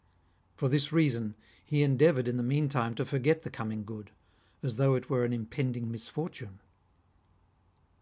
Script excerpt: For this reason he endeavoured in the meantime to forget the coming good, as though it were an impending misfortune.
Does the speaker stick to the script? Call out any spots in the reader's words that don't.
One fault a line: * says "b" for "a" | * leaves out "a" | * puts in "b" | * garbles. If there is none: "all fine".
all fine